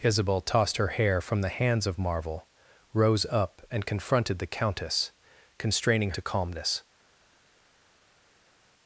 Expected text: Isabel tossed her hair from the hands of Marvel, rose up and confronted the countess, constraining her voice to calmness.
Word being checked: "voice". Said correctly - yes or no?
no